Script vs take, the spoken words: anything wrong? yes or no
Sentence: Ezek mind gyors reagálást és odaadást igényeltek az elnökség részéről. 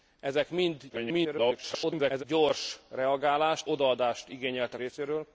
yes